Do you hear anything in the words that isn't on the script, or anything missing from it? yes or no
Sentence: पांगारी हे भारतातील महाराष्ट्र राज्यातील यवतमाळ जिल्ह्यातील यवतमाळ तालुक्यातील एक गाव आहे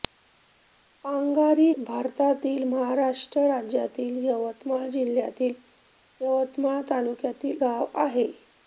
yes